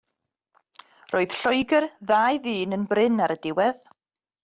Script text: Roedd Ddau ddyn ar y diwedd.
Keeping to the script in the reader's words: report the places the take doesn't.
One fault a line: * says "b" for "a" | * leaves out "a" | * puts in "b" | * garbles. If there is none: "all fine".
* puts in "Lloegr"
* puts in "yn brin"